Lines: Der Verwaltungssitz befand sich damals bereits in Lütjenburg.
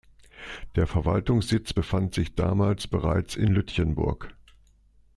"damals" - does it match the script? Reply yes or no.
yes